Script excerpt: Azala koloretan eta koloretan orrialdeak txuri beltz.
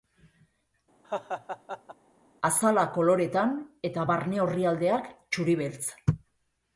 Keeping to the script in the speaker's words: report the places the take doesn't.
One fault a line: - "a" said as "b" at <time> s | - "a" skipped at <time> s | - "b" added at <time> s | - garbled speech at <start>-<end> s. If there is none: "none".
- "koloretan" said as "barne" at 4.1 s